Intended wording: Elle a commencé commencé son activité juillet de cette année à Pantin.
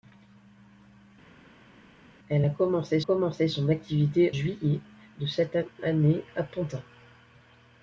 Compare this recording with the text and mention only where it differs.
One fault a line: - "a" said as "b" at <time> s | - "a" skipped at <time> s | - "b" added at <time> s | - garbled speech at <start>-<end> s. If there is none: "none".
none